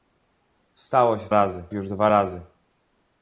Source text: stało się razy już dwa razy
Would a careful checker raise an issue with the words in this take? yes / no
no